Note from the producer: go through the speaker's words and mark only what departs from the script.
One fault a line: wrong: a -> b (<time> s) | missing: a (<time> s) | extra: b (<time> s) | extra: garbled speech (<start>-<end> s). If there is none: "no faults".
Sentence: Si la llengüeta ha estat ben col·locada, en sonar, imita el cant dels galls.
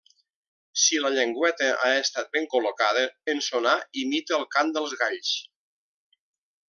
no faults